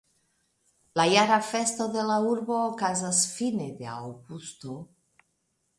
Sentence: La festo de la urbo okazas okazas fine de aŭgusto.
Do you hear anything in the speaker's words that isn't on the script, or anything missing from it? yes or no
yes